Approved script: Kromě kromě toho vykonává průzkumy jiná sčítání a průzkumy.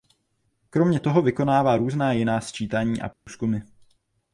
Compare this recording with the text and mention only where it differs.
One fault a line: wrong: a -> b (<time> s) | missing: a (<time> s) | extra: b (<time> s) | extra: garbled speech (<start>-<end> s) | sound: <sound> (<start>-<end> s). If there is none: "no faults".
missing: kromě (1.0 s)
wrong: průzkumy -> různá (1.8 s)
sound: dropout (3.1-3.3 s)